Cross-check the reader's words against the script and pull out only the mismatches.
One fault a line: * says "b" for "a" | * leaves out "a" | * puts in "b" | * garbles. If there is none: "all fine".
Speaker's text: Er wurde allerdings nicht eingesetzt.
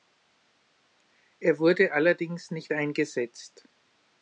all fine